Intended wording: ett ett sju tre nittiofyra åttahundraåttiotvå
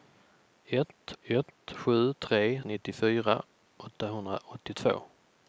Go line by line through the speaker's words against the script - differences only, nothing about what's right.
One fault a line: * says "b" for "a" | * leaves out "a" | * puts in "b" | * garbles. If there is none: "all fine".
all fine